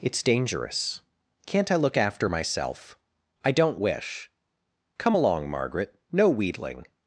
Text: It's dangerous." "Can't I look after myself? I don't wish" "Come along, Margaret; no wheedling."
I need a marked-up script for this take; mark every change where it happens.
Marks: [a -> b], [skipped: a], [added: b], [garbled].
It's dangerous." "Can't I look after myself? I don't wish" "Come along, Margaret; no wheedling."